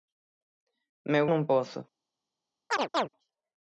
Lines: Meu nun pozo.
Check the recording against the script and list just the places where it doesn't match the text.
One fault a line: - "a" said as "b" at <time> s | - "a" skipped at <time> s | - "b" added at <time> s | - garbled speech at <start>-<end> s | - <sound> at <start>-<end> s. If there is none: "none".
- chirp at 2.7-3.1 s